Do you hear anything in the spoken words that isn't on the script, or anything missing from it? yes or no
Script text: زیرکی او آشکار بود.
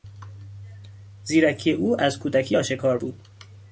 yes